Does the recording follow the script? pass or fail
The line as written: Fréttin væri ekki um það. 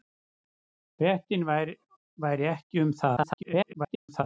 fail